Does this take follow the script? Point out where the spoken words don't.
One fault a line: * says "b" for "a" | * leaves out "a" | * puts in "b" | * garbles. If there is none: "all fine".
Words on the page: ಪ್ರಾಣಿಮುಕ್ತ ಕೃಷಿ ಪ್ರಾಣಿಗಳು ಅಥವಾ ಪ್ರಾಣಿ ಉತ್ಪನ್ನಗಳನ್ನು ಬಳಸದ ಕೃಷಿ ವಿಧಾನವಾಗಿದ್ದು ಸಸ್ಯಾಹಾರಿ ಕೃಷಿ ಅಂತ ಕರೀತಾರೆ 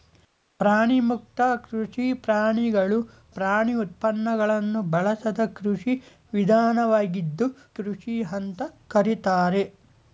* leaves out "ಅಥವಾ"
* leaves out "ಸಸ್ಯಾಹಾರಿ"